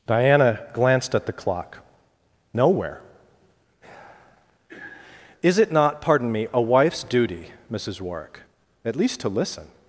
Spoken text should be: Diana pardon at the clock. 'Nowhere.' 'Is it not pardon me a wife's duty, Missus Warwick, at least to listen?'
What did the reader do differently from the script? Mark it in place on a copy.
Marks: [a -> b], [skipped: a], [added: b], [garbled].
Diana [pardon -> glanced] at the clock. 'Nowhere.' 'Is it not pardon me a wife's duty, Missus Warwick, at least to listen?'